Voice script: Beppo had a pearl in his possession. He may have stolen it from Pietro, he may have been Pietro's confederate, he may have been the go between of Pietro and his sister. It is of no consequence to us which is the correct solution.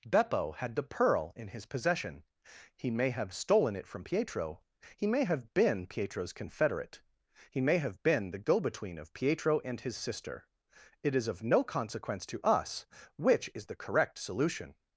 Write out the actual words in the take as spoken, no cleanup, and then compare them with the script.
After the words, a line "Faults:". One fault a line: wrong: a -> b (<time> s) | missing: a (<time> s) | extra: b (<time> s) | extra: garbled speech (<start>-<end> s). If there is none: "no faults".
Beppo had the pearl in his possession. He may have stolen it from Pietro, he may have been Pietro's confederate, he may have been the go between of Pietro and his sister. It is of no consequence to us which is the correct solution.
Faults:
wrong: a -> the (0.8 s)